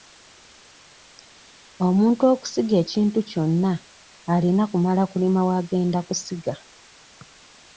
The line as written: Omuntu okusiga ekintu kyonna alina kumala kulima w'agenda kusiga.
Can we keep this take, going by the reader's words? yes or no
yes